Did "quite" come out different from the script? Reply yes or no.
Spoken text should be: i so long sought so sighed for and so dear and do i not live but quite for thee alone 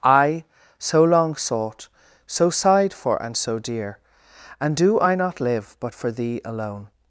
yes